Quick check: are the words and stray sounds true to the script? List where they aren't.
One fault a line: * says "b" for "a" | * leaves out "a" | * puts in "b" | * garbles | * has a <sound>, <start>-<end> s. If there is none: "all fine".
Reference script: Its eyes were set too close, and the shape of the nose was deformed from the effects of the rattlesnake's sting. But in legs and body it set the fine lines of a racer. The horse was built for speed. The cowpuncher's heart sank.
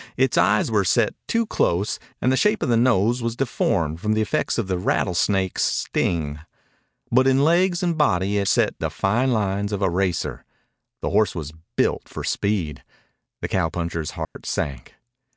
* has a dropout, 14.2-14.4 s